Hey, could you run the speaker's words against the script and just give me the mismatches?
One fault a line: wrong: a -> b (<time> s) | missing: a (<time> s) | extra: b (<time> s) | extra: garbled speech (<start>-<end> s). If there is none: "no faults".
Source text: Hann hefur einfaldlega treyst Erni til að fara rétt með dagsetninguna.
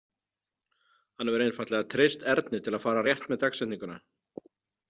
no faults